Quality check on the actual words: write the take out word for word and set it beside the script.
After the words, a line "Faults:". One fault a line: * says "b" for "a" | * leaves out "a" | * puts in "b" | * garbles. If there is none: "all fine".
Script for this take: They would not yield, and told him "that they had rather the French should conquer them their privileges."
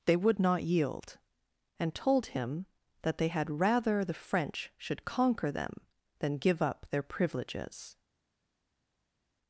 They would not yield, and told him "that they had rather the French should conquer them than give up their privileges."
Faults:
* puts in "than give up"